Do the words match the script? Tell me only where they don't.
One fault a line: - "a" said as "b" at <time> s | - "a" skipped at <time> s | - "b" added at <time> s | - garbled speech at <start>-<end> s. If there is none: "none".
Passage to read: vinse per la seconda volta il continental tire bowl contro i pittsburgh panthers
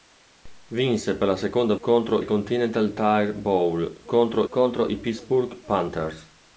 - "volta" said as "contro" at 1.8 s
- "contro" added at 4.5 s